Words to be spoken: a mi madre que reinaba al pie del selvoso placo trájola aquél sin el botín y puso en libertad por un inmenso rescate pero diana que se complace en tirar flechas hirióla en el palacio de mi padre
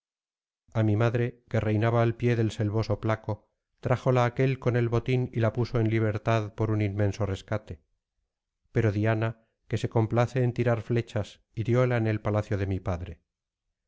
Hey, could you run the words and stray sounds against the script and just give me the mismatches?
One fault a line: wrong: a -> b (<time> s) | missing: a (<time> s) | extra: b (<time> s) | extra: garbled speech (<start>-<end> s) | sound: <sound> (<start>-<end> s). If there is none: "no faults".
wrong: sin -> con (4.6 s)
extra: la (5.4 s)